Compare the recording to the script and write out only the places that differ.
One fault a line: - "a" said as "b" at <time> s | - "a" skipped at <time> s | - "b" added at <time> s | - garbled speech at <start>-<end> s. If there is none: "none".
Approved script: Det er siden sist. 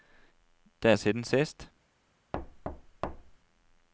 none